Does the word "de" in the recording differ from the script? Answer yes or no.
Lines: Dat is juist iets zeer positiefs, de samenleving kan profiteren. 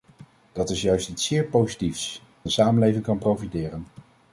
no